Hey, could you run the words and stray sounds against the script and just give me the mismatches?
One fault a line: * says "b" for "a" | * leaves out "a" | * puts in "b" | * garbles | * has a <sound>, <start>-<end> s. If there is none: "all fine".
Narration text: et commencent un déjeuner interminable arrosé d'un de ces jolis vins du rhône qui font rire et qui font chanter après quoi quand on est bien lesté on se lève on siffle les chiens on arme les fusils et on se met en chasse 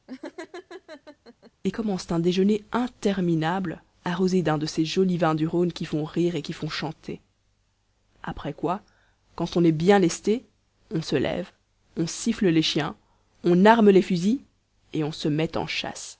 * has a laugh, 0.1-1.5 s